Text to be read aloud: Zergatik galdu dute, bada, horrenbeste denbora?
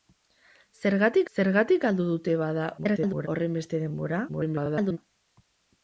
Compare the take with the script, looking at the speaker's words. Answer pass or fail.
fail